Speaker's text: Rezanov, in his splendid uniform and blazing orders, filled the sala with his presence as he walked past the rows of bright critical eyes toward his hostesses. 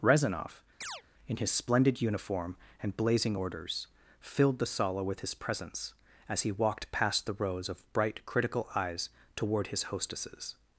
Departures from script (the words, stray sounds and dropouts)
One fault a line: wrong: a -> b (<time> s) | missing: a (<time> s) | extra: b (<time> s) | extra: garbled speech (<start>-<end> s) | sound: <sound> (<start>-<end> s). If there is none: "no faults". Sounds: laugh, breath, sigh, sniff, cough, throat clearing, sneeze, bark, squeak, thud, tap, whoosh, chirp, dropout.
sound: chirp (0.8-1.0 s)